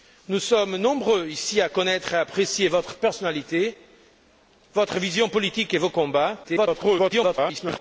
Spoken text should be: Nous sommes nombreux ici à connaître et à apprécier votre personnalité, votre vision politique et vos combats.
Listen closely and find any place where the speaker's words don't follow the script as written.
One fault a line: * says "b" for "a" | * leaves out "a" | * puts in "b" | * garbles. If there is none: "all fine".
* garbles